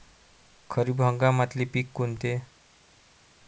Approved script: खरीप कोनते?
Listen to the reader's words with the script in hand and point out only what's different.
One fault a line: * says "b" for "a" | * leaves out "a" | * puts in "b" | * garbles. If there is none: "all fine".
* puts in "हंगामातले पिकं"